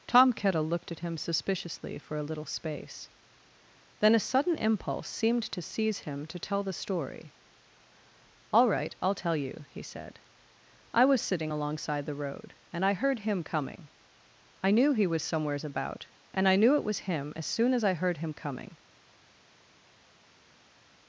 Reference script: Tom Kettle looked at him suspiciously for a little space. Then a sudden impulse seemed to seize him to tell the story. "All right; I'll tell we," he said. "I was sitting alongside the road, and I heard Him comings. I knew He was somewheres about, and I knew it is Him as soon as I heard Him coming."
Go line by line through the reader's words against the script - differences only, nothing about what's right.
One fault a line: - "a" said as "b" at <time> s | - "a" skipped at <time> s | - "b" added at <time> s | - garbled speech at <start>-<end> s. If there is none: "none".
- "we" said as "you" at 9.3 s
- "comings" said as "coming" at 13.4 s
- "is" said as "was" at 16.8 s